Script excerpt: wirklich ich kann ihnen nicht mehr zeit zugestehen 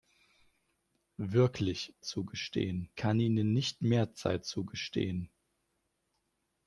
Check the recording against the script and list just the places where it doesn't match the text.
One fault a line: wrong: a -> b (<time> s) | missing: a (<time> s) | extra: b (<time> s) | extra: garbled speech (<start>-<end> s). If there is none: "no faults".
wrong: ich -> zugestehen (2.0 s)